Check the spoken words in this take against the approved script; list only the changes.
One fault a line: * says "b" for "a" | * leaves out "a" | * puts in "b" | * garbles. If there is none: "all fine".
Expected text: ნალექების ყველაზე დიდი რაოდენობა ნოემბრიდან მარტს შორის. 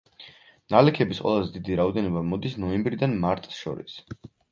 * puts in "მოდის"